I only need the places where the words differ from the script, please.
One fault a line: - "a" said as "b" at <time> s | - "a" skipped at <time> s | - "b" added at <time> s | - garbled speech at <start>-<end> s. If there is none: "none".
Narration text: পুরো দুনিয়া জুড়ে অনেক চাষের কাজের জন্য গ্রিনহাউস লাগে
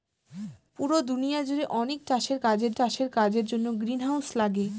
- "চাষের কাজের" added at 2.8 s